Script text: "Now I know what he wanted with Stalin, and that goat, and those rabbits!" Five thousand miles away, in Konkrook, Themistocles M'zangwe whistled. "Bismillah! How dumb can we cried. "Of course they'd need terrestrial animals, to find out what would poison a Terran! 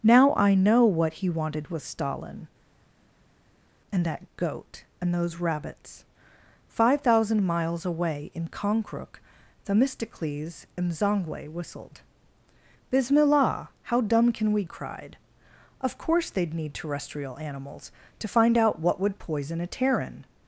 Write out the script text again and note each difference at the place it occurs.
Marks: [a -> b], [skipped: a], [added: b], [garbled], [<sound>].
"Now I know what he wanted with Stalin, and that goat, and those rabbits!" Five thousand miles away, in Konkrook, Themistocles M'zangwe whistled. "Bismillah! How dumb can we cried. "Of course they'd need terrestrial animals, to find out what would poison a Terran!